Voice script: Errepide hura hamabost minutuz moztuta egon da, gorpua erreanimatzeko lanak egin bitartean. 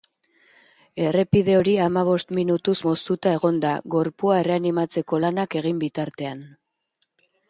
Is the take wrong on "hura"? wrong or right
wrong